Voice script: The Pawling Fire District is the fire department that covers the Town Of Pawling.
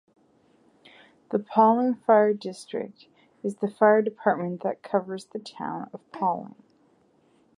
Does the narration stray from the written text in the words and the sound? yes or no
no